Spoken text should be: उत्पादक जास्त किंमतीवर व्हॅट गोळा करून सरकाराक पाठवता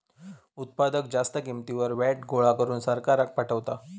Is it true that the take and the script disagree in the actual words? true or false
false